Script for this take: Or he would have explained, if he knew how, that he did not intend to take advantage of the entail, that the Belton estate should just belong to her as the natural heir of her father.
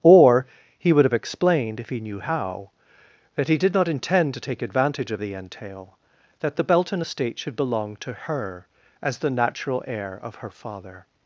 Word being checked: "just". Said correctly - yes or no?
no